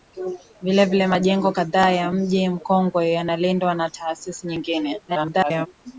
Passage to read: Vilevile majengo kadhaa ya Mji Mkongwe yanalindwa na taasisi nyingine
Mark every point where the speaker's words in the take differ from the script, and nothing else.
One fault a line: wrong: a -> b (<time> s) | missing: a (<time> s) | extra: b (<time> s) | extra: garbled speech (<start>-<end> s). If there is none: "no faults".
extra: garbled speech (5.1-5.7 s)